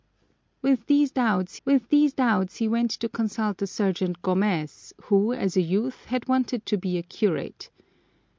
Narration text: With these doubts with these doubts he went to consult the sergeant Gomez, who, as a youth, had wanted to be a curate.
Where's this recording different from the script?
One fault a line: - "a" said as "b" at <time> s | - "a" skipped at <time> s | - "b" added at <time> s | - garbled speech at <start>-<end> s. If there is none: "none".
none